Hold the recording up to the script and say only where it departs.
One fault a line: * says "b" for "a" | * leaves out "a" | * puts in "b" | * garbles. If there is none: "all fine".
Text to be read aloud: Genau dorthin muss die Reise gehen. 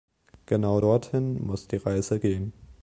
all fine